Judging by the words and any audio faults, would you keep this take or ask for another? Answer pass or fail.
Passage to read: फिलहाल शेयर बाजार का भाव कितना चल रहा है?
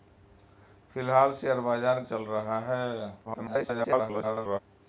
fail